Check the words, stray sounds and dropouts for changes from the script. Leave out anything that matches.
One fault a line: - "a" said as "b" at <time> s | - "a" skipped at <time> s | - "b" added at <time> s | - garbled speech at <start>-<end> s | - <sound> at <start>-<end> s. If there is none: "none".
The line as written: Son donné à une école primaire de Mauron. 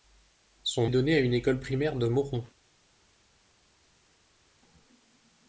none